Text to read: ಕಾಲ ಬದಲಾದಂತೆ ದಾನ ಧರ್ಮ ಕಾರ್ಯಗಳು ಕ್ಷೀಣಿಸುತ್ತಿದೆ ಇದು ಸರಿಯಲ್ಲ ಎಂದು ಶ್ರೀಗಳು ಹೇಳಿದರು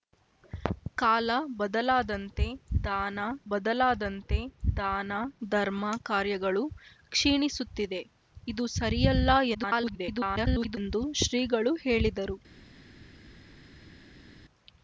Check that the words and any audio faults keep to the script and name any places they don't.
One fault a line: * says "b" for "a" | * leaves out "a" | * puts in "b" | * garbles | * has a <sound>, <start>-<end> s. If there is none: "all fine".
* puts in "ಬದಲಾದಂತೆ ದಾನ"
* garbles